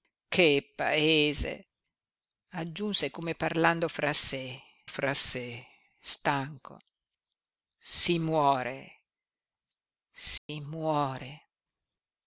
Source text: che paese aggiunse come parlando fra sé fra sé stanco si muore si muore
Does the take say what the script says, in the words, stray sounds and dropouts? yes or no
no